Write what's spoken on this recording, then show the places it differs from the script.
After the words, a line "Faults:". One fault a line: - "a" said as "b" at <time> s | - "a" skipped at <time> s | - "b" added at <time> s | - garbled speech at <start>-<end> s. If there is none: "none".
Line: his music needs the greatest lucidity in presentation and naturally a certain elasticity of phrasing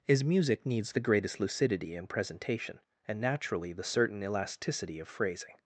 his music needs the greatest lucidity in presentation and naturally the certain elasticity of phrasing
Faults:
- "a" said as "the" at 3.7 s